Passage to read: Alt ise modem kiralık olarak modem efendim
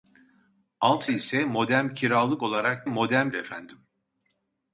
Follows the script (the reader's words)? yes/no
yes